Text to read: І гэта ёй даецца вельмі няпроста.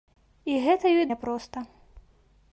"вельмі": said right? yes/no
no